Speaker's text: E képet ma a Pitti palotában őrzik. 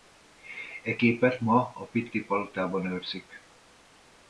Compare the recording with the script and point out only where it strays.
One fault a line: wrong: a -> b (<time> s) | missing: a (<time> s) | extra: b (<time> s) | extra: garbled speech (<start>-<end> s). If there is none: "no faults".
no faults